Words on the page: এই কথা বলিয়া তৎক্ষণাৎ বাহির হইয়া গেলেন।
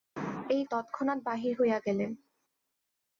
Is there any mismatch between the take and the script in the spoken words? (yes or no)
yes